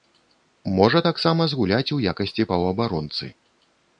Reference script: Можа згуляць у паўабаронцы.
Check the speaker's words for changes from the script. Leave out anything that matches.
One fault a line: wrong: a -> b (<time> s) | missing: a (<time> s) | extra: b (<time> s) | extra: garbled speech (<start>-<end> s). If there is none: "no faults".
extra: таксама (1.1 s)
extra: якасці (2.1 s)